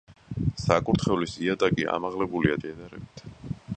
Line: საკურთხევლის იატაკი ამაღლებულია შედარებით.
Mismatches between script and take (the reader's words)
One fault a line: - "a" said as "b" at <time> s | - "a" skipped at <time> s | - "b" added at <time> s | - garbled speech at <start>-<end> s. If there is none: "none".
none